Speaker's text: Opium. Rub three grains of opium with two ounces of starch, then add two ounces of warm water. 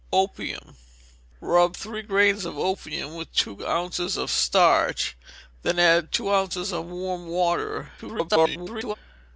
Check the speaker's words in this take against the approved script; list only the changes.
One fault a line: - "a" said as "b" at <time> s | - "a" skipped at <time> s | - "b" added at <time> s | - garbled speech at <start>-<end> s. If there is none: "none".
- garbled speech at 8.0-9.0 s